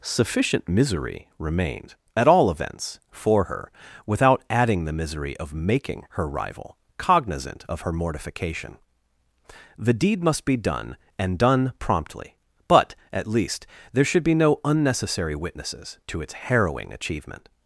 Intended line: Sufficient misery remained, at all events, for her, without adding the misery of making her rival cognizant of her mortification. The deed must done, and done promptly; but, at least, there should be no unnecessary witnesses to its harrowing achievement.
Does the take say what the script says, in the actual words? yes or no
no